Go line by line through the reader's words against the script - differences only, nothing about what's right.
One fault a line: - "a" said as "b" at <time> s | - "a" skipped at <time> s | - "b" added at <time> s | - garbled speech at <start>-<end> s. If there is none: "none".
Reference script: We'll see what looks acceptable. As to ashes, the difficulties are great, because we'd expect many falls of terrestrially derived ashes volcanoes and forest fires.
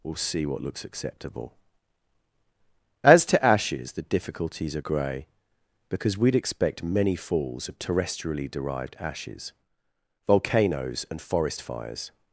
- "great" said as "grey" at 4.8 s